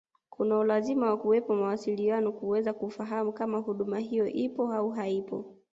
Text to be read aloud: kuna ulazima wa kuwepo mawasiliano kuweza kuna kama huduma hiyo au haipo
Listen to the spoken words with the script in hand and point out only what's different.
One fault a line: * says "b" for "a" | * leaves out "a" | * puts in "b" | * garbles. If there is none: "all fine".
* says "kufahamu" for "kuna"
* puts in "ipo"